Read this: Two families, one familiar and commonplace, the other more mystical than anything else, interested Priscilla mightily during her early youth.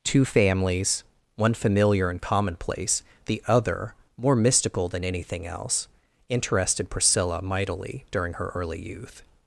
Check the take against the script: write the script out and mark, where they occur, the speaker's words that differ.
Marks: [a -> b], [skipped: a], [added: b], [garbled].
Two families, one familiar and commonplace, the other more mystical than anything else, interested Priscilla mightily during her early youth.